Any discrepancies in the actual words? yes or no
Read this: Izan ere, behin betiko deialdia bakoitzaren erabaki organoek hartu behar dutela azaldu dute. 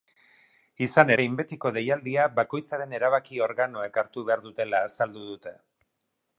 yes